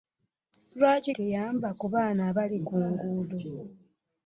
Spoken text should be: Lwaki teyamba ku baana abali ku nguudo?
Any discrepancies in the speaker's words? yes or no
no